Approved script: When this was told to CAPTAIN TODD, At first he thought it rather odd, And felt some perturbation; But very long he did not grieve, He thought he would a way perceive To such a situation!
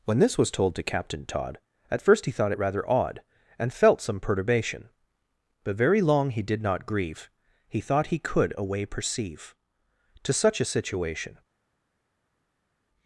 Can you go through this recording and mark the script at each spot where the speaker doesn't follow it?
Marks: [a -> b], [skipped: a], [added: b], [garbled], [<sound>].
When this was told to CAPTAIN TODD, At first he thought it rather odd, And felt some perturbation; But very long he did not grieve, He thought he [would -> could] a way perceive To such a situation!